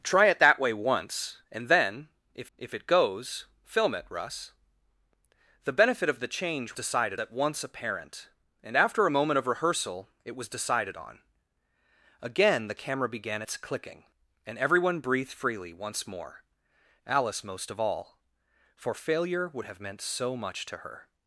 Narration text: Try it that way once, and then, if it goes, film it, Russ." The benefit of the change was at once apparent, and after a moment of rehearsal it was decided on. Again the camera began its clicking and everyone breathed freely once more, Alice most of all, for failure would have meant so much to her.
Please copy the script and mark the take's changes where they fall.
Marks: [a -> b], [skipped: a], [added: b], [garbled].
Try it that way once, and then, if [added: if] it goes, film it, Russ." The benefit of the change [was -> decided] at once apparent, and after a moment of rehearsal it was decided on. Again the camera began its clicking and everyone breathed freely once more, Alice most of all, for failure would have meant so much to her.